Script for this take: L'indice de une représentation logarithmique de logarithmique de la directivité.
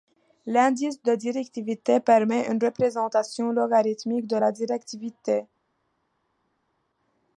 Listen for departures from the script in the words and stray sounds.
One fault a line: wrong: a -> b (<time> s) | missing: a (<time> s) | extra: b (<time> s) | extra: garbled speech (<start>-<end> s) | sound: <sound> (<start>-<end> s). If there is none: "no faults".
extra: directivité permet (1.1 s)
missing: logarithmique de (4.4 s)